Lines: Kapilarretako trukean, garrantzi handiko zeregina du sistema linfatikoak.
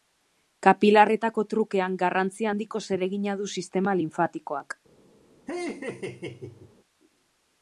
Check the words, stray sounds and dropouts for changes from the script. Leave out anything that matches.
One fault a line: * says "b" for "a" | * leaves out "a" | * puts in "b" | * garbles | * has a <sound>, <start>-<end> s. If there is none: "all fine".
* has a laugh, 5.5-6.7 s